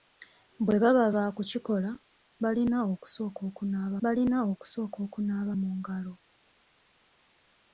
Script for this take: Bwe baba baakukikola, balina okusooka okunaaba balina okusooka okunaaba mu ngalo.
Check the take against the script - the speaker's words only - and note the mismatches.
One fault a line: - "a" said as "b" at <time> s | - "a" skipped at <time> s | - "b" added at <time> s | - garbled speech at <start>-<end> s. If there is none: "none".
none